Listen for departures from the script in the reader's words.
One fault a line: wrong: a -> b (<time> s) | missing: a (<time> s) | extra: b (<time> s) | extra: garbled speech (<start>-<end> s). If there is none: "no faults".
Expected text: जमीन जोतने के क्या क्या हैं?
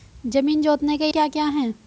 no faults